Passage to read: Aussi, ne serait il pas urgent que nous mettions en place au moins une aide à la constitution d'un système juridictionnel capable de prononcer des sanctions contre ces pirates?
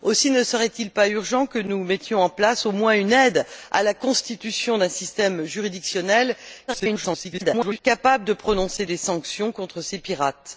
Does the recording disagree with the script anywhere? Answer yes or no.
yes